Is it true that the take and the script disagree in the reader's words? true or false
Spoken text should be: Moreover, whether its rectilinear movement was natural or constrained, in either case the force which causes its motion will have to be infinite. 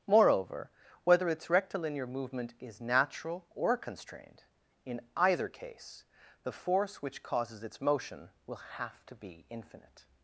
true